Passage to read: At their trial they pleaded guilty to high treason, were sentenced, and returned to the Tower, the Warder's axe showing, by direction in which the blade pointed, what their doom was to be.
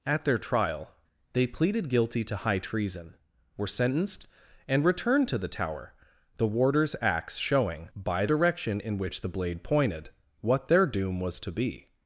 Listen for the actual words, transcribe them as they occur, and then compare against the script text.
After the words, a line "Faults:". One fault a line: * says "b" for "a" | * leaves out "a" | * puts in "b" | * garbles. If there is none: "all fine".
At their trial they pleaded guilty to high treason, were sentenced, and returned to the Tower, the Warder's axe showing, by direction in which the blade pointed, what their doom was to be.
Faults:
all fine